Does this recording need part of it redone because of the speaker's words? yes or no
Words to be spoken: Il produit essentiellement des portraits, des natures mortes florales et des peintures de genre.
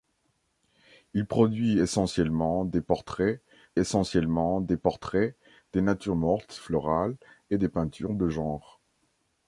yes